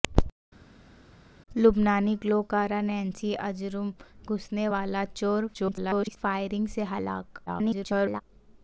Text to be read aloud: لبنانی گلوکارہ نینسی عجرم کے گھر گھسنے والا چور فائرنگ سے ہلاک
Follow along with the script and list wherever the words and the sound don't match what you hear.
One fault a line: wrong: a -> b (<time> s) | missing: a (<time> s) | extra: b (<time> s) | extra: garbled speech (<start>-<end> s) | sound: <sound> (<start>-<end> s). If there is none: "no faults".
missing: کے گھر (3.9 s)
extra: garbled speech (5.5-6.2 s)
extra: garbled speech (7.5-8.2 s)